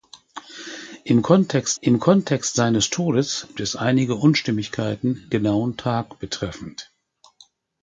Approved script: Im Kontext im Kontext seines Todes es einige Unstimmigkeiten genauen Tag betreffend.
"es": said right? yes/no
yes